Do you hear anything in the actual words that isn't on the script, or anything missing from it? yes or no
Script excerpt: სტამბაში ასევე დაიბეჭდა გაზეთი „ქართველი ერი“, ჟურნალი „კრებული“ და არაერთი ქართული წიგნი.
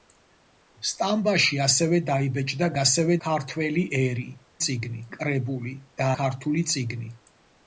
yes